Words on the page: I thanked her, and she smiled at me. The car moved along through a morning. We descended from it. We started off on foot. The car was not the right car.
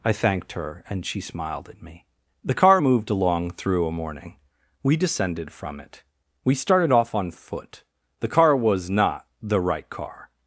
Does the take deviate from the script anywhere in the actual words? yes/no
no